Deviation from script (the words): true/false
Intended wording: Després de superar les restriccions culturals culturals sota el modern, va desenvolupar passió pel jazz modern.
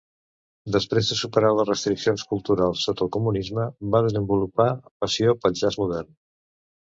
true